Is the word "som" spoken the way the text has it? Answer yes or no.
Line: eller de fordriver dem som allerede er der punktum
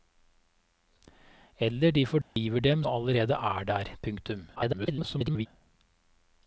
no